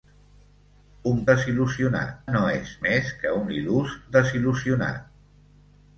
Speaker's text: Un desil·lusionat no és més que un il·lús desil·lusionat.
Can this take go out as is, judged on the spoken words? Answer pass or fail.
pass